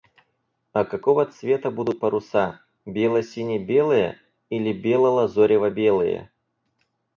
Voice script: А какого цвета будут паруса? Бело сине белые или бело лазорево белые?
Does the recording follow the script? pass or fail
pass